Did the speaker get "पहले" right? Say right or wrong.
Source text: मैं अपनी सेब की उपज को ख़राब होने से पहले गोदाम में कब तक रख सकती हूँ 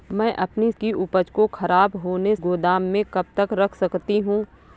wrong